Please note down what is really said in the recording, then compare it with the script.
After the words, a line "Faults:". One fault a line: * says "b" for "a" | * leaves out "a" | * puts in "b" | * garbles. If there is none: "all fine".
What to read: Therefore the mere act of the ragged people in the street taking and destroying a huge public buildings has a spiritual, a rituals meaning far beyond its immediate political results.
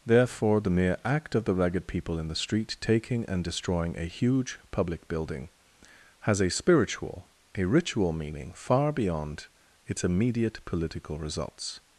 Therefore the mere act of the ragged people in the street taking and destroying a huge public building has a spiritual, a ritual meaning far beyond its immediate political results.
Faults:
* says "building" for "buildings"
* says "ritual" for "rituals"